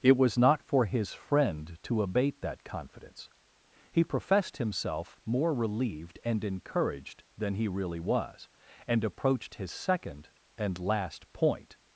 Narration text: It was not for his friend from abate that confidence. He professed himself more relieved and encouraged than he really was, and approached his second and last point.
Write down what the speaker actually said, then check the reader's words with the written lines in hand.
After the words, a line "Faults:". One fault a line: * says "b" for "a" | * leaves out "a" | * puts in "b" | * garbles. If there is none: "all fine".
It was not for his friend to abate that confidence. He professed himself more relieved and encouraged than he really was, and approached his second and last point.
Faults:
* says "to" for "from"